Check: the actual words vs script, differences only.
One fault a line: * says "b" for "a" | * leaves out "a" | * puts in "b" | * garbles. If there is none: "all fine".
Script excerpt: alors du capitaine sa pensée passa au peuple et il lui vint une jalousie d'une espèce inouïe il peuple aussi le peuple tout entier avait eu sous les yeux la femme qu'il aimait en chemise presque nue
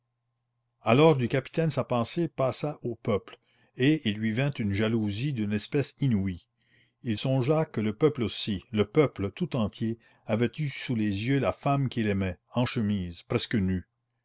* puts in "songea que le"